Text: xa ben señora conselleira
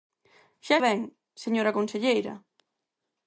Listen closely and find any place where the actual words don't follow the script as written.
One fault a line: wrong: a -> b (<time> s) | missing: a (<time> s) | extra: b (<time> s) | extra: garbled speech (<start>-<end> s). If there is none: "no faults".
no faults